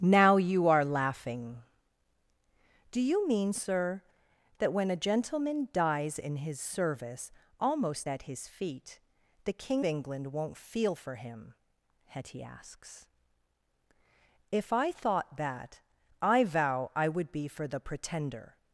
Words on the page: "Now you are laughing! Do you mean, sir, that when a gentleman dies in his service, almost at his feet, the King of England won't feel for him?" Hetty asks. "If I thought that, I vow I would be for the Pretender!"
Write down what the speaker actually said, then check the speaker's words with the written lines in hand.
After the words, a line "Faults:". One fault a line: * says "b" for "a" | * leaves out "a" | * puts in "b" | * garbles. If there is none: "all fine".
"Now you are laughing! Do you mean, sir, that when a gentleman dies in his service, almost at his feet, the King England won't feel for him?" Hetty asks. "If I thought that, I vow I would be for the Pretender!"
Faults:
* leaves out "of"